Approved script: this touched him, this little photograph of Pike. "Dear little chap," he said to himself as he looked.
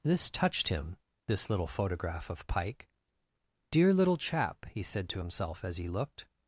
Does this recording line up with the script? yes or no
yes